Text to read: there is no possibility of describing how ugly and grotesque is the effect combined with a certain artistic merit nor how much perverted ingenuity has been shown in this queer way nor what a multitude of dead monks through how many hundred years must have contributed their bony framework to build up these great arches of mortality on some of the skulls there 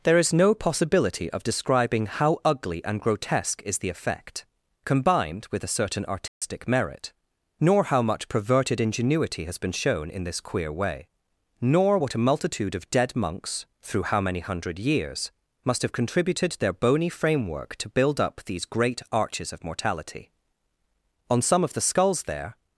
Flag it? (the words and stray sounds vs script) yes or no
yes